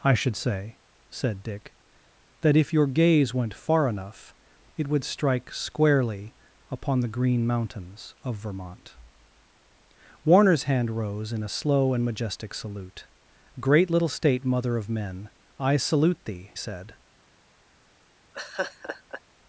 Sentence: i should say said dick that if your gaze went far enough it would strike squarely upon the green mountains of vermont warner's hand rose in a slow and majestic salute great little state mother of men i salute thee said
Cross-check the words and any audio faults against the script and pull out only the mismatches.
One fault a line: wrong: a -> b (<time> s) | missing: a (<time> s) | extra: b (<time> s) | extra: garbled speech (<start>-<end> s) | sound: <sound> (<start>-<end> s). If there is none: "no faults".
sound: laugh (18.3-19.2 s)